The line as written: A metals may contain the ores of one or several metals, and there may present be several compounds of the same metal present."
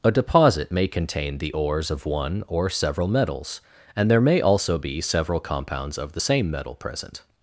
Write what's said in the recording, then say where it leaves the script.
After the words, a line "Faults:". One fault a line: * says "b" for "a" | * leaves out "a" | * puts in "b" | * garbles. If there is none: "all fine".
A deposit may contain the ores of one or several metals, and there may also be several compounds of the same metal present."
Faults:
* says "deposit" for "metals"
* says "also" for "present"